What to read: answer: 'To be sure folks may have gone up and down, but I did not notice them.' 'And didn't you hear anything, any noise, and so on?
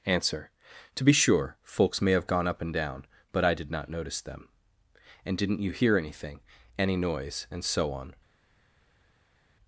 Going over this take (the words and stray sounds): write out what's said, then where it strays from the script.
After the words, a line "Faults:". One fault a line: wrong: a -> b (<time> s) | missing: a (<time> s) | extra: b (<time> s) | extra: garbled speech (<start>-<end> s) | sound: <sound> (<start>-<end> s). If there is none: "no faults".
answer: 'To be sure folks may have gone up and down, but I did not notice them.' 'And didn't you hear anything, any noise, and so on?
Faults:
no faults